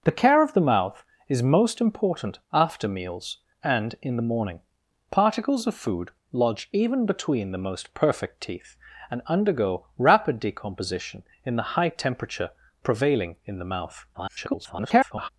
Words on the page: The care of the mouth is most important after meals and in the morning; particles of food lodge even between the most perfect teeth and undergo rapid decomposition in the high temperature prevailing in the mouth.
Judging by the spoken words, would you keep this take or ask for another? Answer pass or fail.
fail